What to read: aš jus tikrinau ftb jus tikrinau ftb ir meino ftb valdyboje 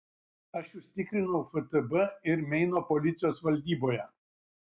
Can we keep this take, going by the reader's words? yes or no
no